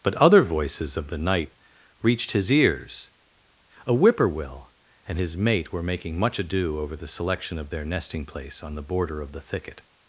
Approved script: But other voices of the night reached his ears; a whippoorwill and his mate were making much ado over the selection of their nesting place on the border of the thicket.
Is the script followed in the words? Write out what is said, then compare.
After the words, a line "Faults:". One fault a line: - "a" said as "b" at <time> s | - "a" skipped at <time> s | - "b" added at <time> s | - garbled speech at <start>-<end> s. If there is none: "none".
But other voices of the night reached his ears; a whippoorwill and his mate were making much ado over the selection of their nesting place on the border of the thicket.
Faults:
none